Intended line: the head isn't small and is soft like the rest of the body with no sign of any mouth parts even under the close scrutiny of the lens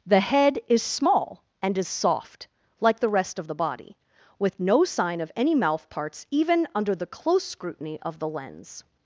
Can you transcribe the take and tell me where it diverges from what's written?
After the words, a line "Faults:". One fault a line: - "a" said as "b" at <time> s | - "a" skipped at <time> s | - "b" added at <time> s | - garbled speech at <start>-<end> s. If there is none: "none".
the head is small and is soft like the rest of the body with no sign of any mouth parts even under the close scrutiny of the lens
Faults:
- "isn't" said as "is" at 0.7 s